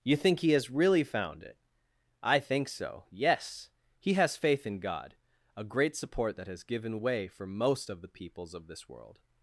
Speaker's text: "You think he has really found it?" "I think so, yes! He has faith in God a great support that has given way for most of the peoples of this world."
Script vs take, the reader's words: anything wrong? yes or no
no